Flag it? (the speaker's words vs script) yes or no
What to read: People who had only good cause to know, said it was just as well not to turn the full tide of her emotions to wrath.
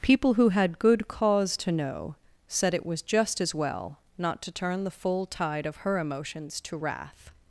yes